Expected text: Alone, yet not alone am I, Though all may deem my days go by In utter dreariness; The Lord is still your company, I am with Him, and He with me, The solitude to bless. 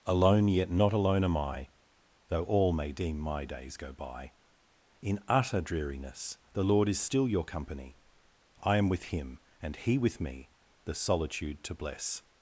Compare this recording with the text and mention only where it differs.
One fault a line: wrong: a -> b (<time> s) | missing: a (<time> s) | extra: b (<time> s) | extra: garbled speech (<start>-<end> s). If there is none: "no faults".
no faults